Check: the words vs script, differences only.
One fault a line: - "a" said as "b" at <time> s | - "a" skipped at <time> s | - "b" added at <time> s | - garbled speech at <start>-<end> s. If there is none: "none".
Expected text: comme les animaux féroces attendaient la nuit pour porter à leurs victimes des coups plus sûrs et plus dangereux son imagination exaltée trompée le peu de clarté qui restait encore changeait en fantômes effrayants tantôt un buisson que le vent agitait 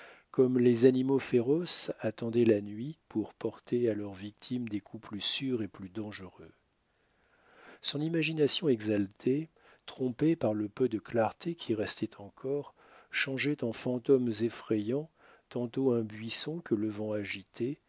- "par" added at 10.3 s